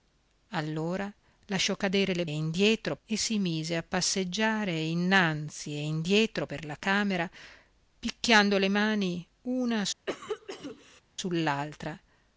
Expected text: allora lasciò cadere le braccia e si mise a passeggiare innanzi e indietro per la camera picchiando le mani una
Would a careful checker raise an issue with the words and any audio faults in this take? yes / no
yes